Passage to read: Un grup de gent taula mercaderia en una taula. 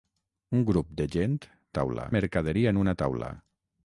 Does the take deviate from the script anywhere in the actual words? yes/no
no